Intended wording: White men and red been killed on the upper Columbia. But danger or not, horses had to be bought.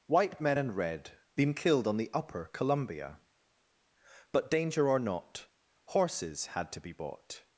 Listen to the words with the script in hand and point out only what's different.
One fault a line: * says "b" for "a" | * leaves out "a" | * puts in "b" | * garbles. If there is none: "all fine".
all fine